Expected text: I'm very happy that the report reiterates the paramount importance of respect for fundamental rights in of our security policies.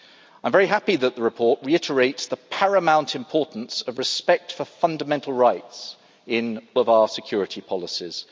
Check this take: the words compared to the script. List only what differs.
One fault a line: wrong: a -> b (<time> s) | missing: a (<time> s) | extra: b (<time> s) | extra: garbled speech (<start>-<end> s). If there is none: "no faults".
no faults